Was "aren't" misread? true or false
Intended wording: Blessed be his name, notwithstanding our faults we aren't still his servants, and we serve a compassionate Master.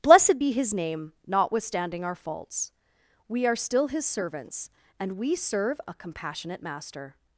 true